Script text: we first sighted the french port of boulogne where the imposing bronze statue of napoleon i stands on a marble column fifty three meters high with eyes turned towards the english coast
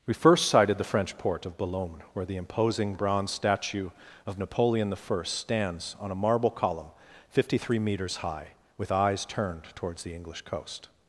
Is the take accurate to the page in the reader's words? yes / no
yes